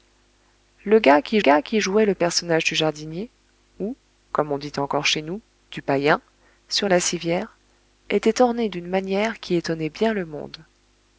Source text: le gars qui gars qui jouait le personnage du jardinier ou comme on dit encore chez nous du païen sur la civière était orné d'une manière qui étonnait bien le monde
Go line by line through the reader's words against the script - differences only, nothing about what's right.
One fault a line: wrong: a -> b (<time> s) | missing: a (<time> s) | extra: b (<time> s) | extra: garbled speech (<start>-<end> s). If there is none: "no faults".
no faults